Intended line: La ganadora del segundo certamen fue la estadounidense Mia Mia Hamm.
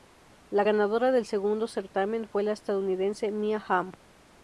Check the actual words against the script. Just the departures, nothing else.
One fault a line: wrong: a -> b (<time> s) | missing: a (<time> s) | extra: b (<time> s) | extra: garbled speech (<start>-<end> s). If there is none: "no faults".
missing: Mia (3.6 s)